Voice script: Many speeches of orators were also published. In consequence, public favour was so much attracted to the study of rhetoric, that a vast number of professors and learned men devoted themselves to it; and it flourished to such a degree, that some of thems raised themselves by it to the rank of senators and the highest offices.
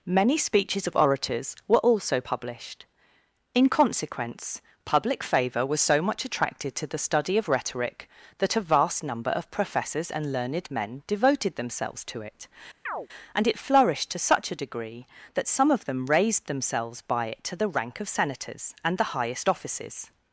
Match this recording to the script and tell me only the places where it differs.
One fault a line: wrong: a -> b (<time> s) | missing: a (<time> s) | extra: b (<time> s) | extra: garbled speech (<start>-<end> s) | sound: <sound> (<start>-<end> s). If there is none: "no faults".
sound: chirp (12.9-13.1 s)
wrong: thems -> them (15.8 s)